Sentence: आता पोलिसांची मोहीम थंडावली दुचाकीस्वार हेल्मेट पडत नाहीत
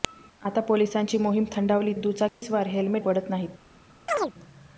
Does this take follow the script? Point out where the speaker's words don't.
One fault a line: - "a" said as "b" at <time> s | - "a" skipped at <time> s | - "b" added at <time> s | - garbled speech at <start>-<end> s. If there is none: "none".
none